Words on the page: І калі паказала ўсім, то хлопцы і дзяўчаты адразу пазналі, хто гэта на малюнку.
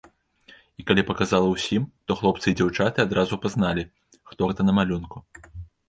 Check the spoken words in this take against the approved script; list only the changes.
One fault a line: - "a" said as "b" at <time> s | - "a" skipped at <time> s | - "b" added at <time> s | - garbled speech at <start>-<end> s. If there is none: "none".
none